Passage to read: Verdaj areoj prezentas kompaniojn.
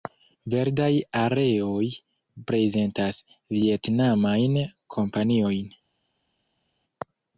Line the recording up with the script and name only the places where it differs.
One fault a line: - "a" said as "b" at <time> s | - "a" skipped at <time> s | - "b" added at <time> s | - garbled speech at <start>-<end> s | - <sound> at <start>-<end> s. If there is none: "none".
- "vjetnamajn" added at 3.6 s